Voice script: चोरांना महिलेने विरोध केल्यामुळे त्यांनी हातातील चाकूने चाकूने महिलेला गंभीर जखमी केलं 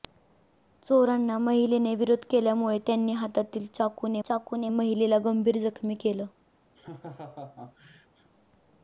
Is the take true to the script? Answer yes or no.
yes